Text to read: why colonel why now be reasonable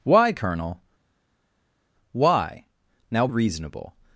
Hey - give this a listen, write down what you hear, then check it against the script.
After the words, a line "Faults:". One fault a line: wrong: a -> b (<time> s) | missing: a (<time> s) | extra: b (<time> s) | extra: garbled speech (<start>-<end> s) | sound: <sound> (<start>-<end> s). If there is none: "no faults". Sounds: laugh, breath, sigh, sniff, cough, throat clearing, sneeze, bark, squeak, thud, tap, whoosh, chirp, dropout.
why colonel why now reasonable
Faults:
missing: be (3.3 s)